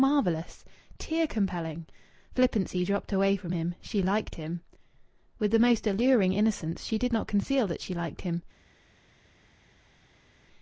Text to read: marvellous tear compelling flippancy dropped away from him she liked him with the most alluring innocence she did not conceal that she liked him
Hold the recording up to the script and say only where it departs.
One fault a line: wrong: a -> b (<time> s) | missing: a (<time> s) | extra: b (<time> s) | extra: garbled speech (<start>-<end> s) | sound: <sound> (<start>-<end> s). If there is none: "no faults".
no faults